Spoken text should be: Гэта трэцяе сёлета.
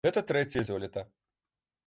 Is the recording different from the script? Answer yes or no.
no